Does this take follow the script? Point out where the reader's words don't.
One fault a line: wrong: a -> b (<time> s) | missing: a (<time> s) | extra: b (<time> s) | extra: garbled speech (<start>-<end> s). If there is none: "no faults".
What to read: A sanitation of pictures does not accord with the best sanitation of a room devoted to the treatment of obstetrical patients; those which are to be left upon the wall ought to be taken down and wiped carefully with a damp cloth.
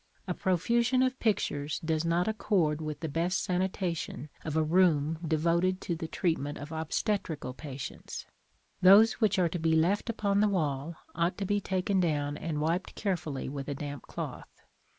wrong: sanitation -> profusion (0.3 s)